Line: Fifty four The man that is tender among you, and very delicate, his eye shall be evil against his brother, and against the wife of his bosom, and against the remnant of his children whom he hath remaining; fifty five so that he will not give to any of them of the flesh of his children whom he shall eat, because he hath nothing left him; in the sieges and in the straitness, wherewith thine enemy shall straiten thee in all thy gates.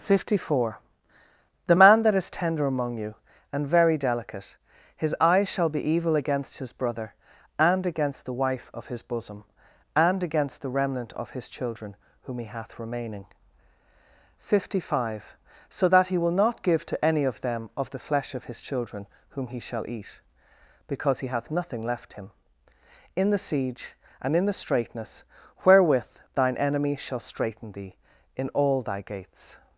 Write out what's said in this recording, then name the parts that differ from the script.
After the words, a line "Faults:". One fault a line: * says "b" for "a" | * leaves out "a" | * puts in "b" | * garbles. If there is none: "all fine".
Fifty four The man that is tender among you, and very delicate, his eye shall be evil against his brother, and against the wife of his bosom, and against the remnant of his children whom he hath remaining; fifty five so that he will not give to any of them of the flesh of his children whom he shall eat, because he hath nothing left him; in the siege and in the straitness, wherewith thine enemy shall straiten thee in all thy gates.
Faults:
* says "siege" for "sieges"